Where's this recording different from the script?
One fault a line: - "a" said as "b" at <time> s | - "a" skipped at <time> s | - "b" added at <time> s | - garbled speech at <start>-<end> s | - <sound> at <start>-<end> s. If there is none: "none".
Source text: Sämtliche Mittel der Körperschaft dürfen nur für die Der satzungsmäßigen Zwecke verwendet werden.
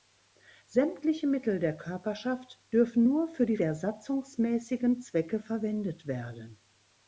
none